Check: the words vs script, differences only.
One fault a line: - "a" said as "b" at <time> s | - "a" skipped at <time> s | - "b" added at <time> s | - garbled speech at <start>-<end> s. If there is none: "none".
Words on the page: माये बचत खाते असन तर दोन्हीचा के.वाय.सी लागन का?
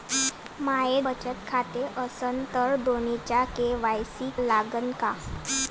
none